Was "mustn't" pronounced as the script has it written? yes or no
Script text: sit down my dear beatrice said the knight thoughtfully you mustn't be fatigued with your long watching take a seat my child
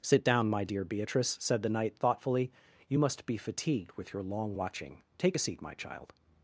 no